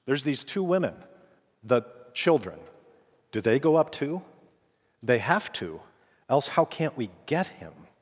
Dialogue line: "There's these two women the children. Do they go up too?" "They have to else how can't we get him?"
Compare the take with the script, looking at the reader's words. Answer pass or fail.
pass